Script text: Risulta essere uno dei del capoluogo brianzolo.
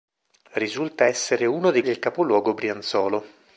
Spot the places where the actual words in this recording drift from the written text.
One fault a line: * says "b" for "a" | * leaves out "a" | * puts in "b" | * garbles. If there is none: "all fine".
all fine